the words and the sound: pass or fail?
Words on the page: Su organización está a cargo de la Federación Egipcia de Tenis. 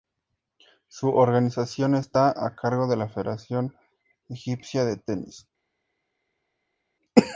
pass